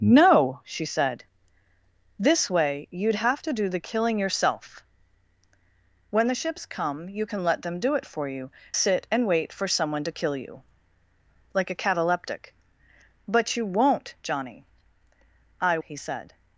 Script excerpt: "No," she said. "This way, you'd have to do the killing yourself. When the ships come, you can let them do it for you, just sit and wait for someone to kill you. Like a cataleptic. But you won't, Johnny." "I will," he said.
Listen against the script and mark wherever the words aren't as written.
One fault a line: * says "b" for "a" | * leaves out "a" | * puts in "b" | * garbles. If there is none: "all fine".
* leaves out "just"
* leaves out "will"